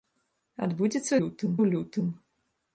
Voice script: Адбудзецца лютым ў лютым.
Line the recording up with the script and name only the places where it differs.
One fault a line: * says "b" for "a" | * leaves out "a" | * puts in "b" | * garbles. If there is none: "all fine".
all fine